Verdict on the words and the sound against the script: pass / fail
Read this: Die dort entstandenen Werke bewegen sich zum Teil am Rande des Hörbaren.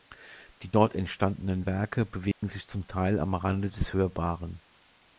fail